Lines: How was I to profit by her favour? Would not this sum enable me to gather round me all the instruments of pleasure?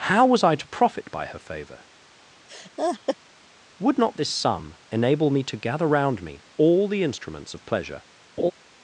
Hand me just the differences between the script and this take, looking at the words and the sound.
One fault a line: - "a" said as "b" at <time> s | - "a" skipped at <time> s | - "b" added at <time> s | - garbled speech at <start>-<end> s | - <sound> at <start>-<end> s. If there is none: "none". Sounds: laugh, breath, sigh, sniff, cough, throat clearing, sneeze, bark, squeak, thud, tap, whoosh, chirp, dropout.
- laugh at 2.5-3.2 s
- laugh at 8.4-8.5 s